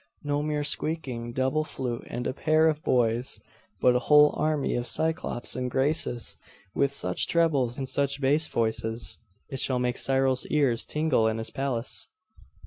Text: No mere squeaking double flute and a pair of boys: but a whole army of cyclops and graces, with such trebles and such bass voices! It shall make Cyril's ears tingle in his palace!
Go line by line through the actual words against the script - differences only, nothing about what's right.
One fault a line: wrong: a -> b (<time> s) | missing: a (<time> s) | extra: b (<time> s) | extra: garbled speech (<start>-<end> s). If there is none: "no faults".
no faults